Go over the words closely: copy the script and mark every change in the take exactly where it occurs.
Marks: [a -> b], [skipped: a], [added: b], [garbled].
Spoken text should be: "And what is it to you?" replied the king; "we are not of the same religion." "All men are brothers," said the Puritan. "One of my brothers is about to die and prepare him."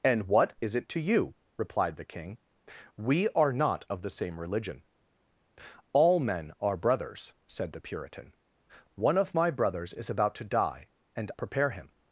"And what is it to you?" replied the king; "we are not of the same religion." "All men are brothers," said the Puritan. "One of my brothers is about to die and prepare him."